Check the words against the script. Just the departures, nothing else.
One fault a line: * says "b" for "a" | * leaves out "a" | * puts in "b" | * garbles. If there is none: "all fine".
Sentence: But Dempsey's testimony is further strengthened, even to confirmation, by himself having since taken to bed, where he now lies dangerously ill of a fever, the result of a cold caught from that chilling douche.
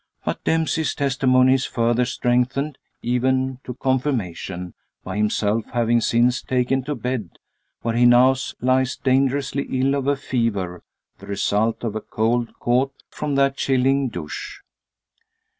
all fine